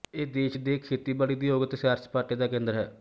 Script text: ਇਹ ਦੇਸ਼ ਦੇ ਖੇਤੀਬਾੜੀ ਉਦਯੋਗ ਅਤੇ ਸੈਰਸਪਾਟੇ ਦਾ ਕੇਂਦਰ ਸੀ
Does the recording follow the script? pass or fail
fail